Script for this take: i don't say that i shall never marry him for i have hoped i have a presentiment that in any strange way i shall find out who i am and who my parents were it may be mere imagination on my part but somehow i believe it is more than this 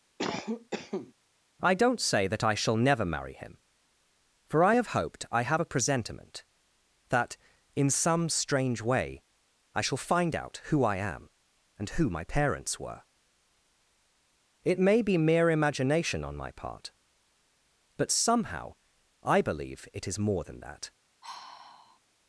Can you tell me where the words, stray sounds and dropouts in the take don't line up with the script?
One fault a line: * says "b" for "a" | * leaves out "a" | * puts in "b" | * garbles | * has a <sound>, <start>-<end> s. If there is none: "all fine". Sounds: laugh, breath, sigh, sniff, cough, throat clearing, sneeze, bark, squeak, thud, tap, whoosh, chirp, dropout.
* has a cough, 0.2-1.1 s
* says "some" for "any"
* says "that" for "this"
* has a sigh, 21.2-22.0 s